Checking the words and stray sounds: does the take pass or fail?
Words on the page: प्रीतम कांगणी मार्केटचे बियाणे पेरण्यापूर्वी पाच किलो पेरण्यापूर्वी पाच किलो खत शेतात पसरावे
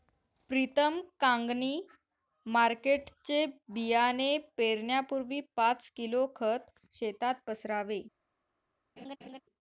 fail